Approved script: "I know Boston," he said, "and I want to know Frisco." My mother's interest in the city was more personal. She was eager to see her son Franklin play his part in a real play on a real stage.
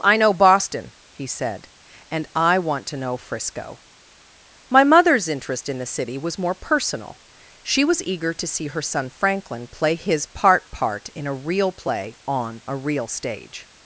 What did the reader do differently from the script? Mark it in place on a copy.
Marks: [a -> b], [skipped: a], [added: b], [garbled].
"I know Boston," he said, "and I want to know Frisco." My mother's interest in the city was more personal. She was eager to see her son Franklin play his part [added: part] in a real play on a real stage.